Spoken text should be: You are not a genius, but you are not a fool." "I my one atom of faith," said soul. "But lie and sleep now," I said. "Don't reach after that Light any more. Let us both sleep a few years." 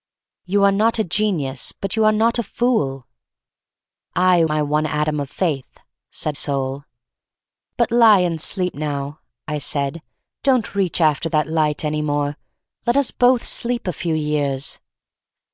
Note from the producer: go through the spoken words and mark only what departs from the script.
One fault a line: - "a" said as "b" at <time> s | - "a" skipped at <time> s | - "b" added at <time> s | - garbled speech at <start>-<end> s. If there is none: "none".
none